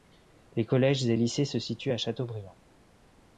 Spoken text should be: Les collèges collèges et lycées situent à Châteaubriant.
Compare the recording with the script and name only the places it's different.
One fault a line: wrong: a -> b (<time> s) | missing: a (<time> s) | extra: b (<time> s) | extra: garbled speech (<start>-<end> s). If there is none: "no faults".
missing: collèges (1.1 s)
extra: se (1.4 s)